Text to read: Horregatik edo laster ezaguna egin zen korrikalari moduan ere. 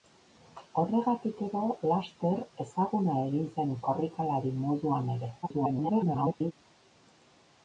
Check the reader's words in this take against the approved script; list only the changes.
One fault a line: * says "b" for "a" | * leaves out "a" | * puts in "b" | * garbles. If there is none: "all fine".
* garbles